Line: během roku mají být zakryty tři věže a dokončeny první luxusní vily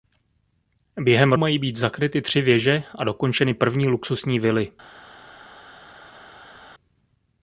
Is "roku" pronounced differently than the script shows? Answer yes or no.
yes